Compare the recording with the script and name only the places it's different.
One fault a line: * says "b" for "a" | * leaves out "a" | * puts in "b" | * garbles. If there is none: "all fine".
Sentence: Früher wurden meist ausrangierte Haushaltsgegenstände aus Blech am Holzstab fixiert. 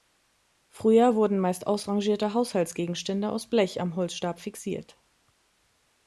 all fine